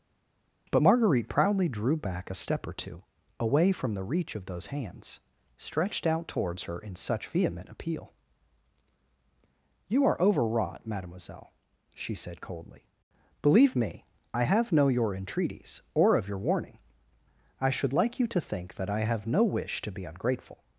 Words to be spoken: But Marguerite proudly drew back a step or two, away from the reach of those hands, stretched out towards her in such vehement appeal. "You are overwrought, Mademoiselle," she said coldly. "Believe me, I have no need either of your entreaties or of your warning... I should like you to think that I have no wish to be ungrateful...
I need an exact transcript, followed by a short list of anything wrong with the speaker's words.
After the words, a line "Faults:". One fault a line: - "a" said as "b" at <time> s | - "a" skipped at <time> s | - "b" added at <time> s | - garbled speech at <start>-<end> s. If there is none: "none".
But Marguerite proudly drew back a step or two, away from the reach of those hands, stretched out towards her in such vehement appeal. "You are overwrought, Mademoiselle," she said coldly. "Believe me, I have no your entreaties or of your warning... I should like you to think that I have no wish to be ungrateful...
Faults:
- "need either of" skipped at 14.9 s